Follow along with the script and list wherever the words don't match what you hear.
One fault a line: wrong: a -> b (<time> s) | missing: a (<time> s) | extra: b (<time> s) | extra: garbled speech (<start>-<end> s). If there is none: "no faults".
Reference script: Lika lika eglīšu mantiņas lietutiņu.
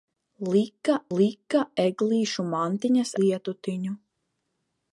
no faults